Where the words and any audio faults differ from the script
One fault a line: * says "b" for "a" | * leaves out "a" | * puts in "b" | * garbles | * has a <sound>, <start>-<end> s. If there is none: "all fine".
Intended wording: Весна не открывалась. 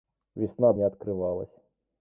all fine